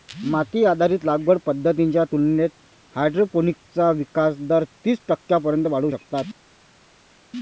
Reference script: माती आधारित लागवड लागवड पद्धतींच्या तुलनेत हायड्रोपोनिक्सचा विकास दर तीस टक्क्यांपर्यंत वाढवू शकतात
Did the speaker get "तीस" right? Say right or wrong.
right